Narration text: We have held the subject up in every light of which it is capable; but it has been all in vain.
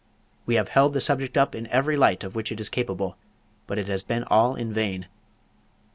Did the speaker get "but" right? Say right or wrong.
right